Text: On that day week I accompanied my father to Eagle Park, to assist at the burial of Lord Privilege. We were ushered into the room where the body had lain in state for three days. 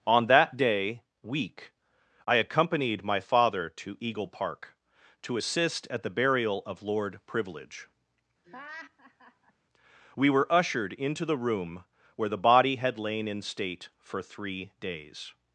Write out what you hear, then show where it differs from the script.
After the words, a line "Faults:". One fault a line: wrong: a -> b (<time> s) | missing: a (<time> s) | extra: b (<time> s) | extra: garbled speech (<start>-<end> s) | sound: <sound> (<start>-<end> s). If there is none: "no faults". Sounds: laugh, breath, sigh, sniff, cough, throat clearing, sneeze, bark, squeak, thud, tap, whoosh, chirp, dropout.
On that day week I accompanied my father to Eagle Park, to assist at the burial of Lord Privilege. We were ushered into the room where the body had lain in state for three days.
Faults:
sound: laugh (8.4-9.5 s)